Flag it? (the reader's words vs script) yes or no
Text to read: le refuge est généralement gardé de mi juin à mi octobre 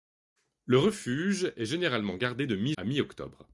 yes